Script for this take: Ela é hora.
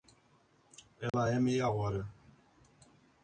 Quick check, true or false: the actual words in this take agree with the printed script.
false